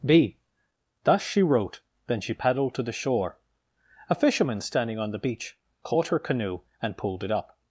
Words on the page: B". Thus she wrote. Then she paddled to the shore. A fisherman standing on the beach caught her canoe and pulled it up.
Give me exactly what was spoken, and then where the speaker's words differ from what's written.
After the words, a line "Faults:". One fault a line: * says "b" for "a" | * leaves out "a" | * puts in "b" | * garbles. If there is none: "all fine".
B". Thus she wrote. Then she paddled to the shore. A fisherman standing on the beach caught her canoe and pulled it up.
Faults:
all fine